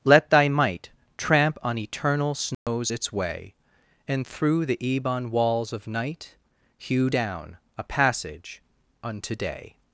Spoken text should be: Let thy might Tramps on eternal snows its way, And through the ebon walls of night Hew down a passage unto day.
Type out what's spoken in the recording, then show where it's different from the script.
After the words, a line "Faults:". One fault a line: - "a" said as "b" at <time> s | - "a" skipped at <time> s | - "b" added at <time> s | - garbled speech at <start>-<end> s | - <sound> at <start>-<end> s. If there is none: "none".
Let thy might Tramp on eternal snows its way, And through the ebon walls of night Hew down a passage unto day.
Faults:
- "Tramps" said as "Tramp" at 1.2 s
- dropout at 2.5-2.7 s